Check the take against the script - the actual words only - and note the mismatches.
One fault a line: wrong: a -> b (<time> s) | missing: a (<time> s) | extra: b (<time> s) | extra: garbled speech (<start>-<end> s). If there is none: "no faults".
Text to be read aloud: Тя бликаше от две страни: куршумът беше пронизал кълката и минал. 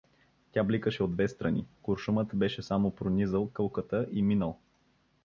extra: само (2.6 s)